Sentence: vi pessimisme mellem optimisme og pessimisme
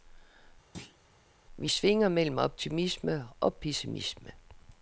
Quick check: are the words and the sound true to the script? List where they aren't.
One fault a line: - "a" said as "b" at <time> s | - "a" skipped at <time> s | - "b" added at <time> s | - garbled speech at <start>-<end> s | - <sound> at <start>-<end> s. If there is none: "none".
- thud at 0.7-1.0 s
- "pessimisme" said as "svinger" at 1.7 s